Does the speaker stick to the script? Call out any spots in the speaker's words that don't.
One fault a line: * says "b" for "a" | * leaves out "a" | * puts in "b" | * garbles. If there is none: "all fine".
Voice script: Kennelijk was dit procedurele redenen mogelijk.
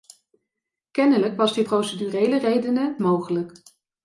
all fine